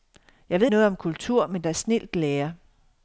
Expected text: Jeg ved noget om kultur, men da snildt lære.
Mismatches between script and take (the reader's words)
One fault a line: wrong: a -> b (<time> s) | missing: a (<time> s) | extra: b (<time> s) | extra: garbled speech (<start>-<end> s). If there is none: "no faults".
no faults